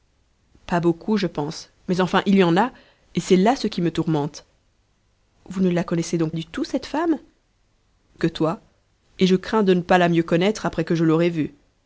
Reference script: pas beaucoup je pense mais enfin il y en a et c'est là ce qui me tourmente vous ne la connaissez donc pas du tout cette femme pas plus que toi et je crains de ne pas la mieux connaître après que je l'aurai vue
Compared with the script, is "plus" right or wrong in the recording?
wrong